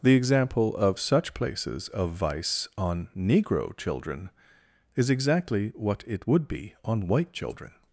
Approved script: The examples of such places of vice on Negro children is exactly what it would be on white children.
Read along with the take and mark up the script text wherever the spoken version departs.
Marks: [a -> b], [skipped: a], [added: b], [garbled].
The [examples -> example] of such places of vice on Negro children is exactly what it would be on white children.